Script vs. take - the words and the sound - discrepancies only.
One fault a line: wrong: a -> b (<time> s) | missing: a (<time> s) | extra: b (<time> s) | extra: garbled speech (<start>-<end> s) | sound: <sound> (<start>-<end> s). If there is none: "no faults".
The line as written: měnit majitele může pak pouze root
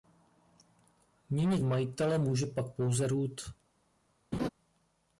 sound: laugh (4.3-4.5 s)